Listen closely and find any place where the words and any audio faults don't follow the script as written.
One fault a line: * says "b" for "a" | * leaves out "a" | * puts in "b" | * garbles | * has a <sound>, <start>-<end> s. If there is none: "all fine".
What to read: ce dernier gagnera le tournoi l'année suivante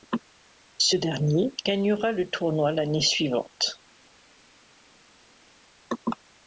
all fine